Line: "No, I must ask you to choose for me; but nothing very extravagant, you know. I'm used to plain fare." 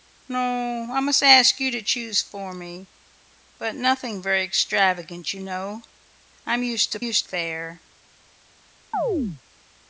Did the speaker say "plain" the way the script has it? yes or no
no